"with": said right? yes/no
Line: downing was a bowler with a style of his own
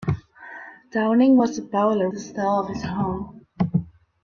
no